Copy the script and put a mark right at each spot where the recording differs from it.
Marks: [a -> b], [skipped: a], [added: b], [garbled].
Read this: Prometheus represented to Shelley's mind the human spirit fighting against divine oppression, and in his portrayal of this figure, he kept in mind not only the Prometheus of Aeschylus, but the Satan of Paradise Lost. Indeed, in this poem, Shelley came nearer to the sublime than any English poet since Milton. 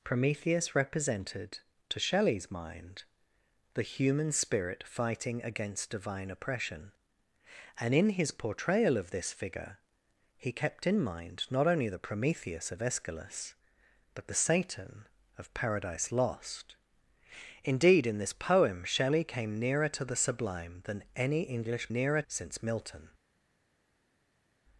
Prometheus represented to Shelley's mind the human spirit fighting against divine oppression, and in his portrayal of this figure, he kept in mind not only the Prometheus of Aeschylus, but the Satan of Paradise Lost. Indeed, in this poem, Shelley came nearer to the sublime than any English [poet -> nearer] since Milton.